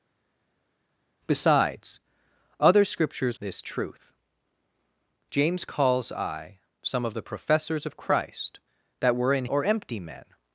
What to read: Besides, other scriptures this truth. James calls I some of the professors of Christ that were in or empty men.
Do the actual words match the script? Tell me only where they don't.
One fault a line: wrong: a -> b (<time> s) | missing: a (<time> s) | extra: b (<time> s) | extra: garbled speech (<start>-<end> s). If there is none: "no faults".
no faults